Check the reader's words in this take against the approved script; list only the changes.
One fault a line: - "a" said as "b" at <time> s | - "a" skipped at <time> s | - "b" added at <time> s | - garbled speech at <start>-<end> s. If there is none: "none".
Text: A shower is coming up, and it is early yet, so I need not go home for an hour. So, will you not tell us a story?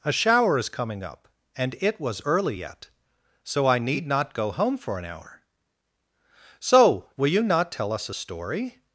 - "is" said as "was" at 2.0 s